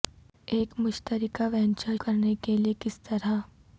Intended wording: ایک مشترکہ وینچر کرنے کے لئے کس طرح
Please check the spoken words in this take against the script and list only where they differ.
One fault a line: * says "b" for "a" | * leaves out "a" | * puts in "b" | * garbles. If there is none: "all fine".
all fine